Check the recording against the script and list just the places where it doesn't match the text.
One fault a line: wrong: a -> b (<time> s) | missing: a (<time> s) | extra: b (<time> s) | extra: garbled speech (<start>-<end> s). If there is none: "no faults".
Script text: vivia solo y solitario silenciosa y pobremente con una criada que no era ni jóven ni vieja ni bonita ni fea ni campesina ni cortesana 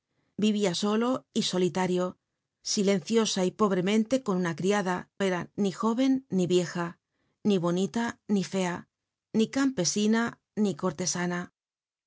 missing: que no (5.1 s)